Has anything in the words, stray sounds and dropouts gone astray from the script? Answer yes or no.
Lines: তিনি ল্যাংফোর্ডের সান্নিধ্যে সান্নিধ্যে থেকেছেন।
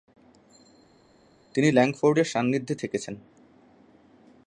yes